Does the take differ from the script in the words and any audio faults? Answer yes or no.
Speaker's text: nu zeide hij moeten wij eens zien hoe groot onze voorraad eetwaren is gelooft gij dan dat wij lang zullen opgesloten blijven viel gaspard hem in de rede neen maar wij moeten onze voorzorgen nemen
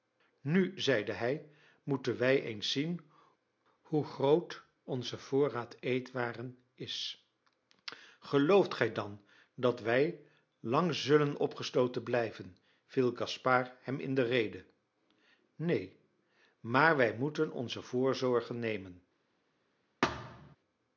yes